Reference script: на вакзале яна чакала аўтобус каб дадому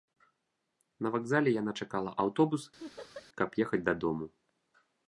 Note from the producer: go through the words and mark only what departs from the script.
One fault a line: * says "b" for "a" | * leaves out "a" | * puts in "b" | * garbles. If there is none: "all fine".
* puts in "ехаць"